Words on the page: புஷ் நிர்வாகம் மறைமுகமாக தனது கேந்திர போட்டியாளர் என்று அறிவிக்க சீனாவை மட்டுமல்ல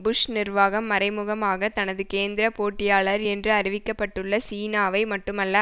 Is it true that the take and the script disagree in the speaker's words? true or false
true